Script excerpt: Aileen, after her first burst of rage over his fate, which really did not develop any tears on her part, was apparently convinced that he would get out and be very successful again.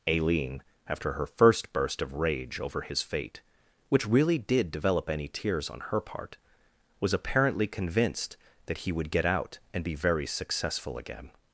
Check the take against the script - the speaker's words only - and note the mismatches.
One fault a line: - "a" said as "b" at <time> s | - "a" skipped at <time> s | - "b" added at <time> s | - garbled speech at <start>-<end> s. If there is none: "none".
- "not" skipped at 4.7 s